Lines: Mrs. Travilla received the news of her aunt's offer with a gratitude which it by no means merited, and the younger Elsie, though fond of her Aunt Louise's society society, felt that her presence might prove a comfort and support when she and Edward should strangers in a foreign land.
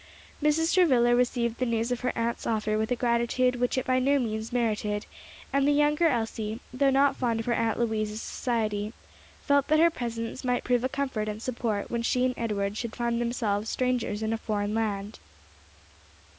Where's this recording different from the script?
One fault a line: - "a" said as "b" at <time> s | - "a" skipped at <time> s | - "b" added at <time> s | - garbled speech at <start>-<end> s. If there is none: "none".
- "not" added at 6.9 s
- "society" skipped at 8.9 s
- "find themselves" added at 13.0 s